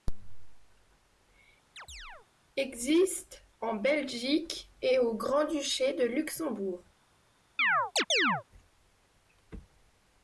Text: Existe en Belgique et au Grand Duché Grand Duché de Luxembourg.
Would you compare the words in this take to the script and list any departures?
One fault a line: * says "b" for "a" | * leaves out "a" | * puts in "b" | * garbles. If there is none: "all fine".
* leaves out "Grand Duché"